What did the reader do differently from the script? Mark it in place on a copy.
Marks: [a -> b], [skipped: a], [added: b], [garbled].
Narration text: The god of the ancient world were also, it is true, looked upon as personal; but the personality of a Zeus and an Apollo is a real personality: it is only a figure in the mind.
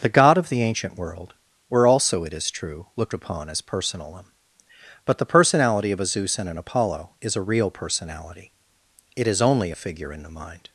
The god of the ancient world were also, it is true, looked upon as personal; but the personality of a Zeus and an Apollo is a real personality: it is only a figure in the mind.